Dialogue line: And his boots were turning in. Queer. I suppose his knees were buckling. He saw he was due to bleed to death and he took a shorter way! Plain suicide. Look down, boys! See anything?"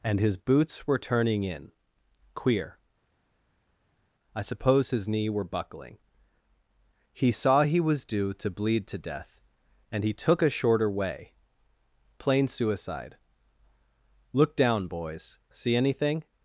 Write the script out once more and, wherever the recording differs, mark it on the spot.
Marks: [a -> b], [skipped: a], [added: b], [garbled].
And his boots were turning in. Queer. I suppose his [knees -> knee] were buckling. He saw he was due to bleed to death and he took a shorter way! Plain suicide. Look down, boys! See anything?"